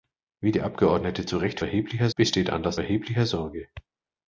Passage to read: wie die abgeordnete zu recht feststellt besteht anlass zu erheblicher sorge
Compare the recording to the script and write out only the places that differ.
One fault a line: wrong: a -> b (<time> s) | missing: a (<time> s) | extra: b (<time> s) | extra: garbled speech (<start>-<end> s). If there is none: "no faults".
wrong: feststellt -> erheblicher (1.6 s)
missing: zu (2.8 s)